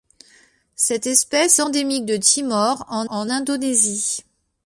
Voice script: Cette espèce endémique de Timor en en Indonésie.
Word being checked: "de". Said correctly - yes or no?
yes